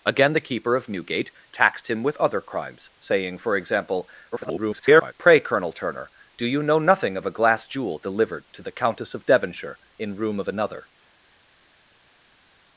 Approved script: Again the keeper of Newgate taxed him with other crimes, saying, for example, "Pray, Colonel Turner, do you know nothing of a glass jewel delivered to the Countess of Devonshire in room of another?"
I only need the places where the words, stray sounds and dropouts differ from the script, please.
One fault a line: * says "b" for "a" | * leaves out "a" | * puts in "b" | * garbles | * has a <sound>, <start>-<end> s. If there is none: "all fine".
* garbles